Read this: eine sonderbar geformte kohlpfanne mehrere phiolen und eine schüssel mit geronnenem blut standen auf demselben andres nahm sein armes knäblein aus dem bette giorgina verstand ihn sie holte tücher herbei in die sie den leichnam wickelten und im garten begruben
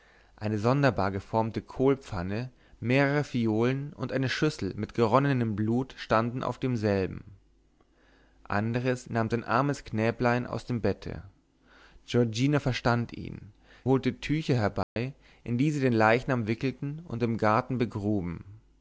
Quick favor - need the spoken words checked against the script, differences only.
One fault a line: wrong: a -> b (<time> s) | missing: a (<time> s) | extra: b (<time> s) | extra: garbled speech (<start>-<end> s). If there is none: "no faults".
missing: sie (13.5 s)